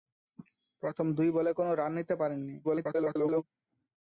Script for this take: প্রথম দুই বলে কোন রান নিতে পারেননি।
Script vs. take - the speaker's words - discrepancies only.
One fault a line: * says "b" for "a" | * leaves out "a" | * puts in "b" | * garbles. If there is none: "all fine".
* garbles